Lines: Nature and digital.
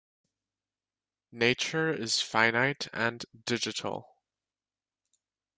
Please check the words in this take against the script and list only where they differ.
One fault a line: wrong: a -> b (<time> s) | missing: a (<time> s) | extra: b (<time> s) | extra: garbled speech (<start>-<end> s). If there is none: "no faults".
extra: is finite (1.9 s)